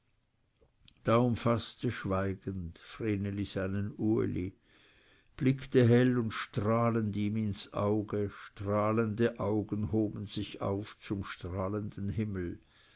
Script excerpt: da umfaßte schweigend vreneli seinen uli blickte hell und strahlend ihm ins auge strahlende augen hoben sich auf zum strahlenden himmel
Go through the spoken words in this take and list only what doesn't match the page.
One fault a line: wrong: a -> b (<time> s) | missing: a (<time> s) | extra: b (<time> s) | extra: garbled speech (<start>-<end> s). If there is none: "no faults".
no faults